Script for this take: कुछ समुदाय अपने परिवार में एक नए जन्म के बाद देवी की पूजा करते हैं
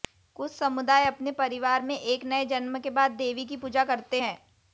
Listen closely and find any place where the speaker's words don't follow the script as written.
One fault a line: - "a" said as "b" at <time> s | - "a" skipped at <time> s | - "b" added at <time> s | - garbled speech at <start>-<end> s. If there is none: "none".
none